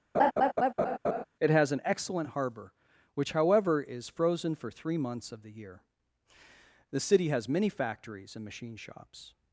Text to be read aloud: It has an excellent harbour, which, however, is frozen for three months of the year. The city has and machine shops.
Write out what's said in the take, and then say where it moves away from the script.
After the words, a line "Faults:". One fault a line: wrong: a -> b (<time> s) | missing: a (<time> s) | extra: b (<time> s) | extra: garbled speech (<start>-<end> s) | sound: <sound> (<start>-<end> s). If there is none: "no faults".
It has an excellent harbour, which, however, is frozen for three months of the year. The city has many factories and machine shops.
Faults:
sound: laugh (0.1-1.2 s)
extra: many factories (7.5 s)